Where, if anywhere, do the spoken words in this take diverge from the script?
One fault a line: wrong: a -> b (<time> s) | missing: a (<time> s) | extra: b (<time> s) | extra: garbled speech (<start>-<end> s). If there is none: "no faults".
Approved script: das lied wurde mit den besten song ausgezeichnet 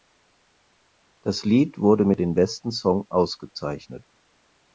no faults